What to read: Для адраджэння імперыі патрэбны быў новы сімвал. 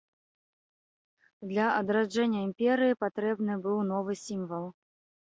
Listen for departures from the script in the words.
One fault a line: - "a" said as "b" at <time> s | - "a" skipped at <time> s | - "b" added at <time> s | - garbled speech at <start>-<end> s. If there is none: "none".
none